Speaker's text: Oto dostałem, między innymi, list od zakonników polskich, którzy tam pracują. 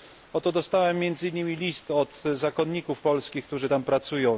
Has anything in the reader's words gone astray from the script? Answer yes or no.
no